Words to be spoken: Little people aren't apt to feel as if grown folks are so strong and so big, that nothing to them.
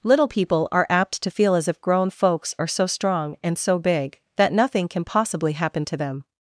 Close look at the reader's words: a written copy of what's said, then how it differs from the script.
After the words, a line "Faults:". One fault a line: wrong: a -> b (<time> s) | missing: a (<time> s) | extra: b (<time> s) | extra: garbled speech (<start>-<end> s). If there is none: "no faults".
Little people are apt to feel as if grown folks are so strong and so big, that nothing can possibly happen to them.
Faults:
wrong: aren't -> are (0.7 s)
extra: can possibly happen (4.9 s)